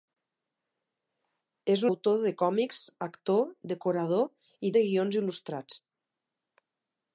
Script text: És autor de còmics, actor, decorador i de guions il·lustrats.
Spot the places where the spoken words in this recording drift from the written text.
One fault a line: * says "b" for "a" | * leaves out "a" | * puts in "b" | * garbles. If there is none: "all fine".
all fine